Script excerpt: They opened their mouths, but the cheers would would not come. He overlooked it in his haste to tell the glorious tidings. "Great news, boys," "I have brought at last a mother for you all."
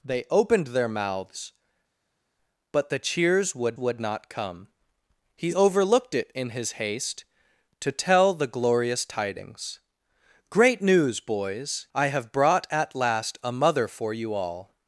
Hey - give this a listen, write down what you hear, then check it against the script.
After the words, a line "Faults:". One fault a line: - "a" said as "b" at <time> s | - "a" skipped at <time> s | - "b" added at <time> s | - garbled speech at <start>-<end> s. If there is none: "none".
They opened their mouths, but the cheers would would not come. He overlooked it in his haste to tell the glorious tidings. "Great news, boys," "I have brought at last a mother for you all."
Faults:
none